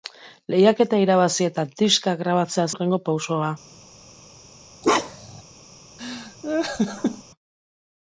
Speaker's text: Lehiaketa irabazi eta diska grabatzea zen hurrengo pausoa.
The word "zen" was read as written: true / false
false